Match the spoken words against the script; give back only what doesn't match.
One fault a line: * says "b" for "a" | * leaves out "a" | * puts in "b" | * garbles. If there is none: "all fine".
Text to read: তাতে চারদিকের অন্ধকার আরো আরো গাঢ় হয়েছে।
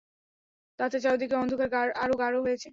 * leaves out "আরো"